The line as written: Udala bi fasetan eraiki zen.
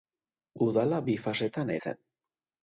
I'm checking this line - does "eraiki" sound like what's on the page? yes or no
no